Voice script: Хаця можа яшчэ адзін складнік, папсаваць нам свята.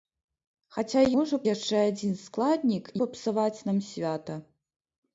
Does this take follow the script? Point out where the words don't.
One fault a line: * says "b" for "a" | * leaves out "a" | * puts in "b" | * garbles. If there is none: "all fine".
all fine